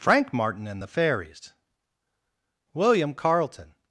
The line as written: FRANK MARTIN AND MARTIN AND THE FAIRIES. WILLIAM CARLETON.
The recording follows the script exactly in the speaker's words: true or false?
false